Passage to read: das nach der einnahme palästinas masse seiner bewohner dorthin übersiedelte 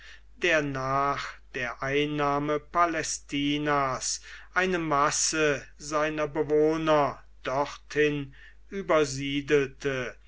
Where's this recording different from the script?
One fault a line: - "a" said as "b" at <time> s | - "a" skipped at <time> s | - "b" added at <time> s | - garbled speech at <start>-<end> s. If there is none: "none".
- "das" said as "der" at 0.4 s
- "eine" added at 4.5 s